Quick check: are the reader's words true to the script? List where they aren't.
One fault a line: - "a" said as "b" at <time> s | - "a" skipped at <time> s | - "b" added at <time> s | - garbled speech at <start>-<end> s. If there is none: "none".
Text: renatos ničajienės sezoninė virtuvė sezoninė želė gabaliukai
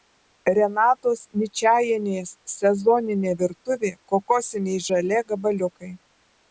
- "sezoninė" said as "kokosiniai" at 4.2 s